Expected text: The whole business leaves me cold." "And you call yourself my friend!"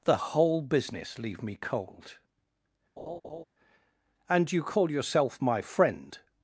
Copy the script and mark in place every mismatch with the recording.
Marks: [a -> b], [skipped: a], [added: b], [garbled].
The whole business [leaves -> leave] me cold." "And you call yourself my friend!"